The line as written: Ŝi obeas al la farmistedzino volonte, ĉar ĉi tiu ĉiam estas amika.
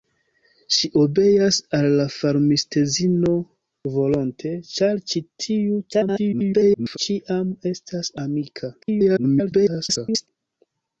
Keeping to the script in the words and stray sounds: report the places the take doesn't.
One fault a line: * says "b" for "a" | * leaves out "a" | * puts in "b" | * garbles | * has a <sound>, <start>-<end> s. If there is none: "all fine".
* garbles
* garbles